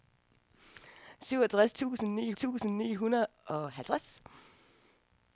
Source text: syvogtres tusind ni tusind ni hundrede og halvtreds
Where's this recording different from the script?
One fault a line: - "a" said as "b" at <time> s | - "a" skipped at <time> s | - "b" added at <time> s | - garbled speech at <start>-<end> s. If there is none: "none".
none